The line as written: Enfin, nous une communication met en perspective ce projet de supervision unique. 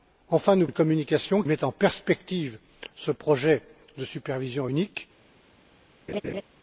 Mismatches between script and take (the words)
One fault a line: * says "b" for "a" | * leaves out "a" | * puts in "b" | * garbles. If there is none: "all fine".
all fine